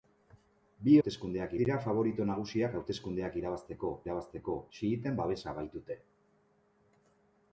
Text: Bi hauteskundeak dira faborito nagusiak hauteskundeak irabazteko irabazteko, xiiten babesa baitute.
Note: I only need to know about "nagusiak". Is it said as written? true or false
true